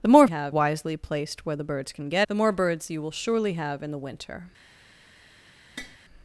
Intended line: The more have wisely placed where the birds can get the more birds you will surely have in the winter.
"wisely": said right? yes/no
yes